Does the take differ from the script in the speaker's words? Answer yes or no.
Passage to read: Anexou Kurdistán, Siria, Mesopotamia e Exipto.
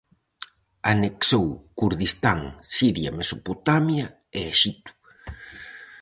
no